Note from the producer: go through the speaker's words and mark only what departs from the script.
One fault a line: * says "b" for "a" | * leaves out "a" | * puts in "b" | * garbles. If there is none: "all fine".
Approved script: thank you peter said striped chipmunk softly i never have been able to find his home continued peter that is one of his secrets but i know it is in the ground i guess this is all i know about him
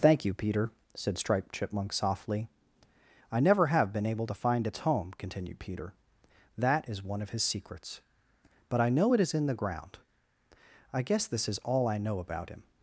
* says "its" for "his"